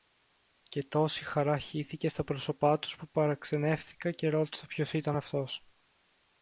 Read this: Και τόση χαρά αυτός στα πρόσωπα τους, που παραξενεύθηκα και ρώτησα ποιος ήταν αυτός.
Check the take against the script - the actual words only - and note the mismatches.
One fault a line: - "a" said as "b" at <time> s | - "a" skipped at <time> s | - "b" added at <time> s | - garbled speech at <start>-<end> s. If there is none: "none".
- "αυτός" said as "χύθηκε" at 1.6 s